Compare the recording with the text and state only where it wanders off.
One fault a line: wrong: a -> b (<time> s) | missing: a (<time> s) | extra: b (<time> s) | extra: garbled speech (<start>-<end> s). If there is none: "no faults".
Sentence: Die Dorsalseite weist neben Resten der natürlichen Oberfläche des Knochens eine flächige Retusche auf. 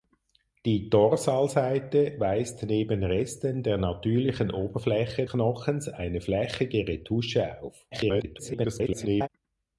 missing: des (5.3 s)
extra: garbled speech (7.9-9.3 s)